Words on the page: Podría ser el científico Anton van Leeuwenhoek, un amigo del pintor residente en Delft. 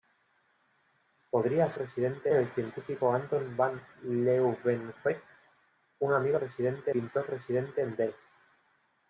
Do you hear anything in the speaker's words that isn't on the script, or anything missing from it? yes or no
yes